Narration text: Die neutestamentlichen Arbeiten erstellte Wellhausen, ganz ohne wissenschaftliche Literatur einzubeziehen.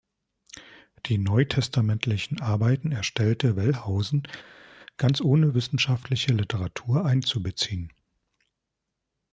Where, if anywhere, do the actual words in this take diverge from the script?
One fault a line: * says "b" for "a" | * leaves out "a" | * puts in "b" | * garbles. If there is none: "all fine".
all fine